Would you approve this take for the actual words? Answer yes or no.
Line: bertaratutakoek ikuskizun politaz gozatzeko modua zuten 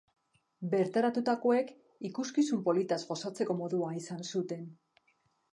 no